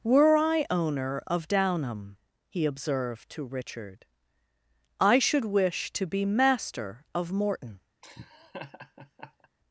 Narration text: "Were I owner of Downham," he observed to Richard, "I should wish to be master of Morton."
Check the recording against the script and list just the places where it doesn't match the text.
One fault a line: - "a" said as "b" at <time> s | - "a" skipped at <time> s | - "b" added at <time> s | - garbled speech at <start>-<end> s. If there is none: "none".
none